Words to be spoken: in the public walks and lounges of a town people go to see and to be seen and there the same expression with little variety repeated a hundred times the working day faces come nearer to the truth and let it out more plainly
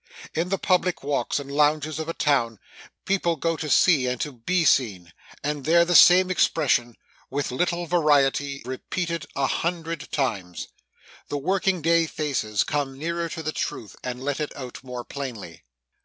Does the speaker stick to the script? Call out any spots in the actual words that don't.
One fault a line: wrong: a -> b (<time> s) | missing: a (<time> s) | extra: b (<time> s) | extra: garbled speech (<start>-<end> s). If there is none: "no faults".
no faults